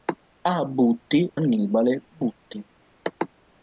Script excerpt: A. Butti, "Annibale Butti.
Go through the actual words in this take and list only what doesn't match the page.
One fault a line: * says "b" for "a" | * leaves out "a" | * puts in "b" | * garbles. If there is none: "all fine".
all fine